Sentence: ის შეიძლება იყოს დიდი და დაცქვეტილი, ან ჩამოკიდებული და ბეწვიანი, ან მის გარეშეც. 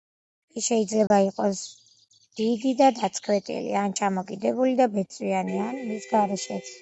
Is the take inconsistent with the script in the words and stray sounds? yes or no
yes